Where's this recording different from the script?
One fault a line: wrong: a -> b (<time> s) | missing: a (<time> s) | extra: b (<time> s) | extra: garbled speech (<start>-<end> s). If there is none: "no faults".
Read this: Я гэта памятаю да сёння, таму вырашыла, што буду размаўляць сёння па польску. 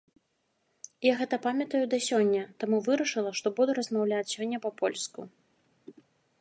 no faults